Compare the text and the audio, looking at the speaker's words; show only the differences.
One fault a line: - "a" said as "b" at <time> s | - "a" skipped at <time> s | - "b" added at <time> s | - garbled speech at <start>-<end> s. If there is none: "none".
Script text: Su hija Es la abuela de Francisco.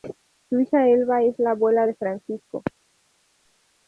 - "Elba" added at 0.9 s